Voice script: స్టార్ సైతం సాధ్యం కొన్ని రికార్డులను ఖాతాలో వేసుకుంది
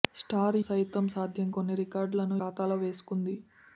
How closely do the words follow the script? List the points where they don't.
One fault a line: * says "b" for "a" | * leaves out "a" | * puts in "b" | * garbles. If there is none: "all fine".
all fine